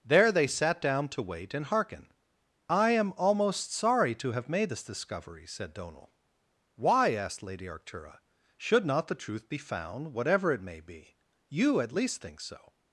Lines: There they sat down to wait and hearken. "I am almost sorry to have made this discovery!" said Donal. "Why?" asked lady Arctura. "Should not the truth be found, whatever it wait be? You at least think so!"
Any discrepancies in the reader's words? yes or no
yes